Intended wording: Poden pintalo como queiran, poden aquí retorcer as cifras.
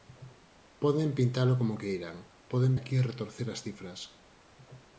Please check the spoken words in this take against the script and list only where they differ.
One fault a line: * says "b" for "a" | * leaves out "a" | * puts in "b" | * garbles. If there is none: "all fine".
all fine